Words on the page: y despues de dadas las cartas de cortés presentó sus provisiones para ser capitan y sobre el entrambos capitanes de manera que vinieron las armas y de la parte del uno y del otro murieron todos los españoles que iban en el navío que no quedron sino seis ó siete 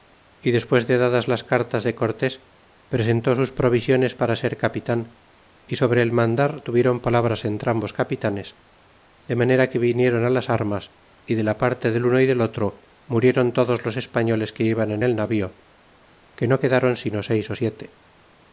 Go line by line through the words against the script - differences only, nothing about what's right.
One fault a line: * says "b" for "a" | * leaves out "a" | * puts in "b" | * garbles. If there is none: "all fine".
* puts in "mandar tuvieron palabras"